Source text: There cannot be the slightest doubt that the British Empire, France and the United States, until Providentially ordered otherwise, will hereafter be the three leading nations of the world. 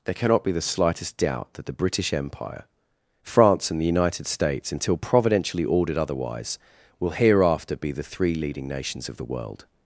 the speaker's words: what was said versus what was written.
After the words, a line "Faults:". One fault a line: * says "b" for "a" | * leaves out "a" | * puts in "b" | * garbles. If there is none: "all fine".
There cannot be the slightest doubt that the British Empire, France and the United States, until Providentially ordered otherwise, will hereafter be the three leading nations of the world.
Faults:
all fine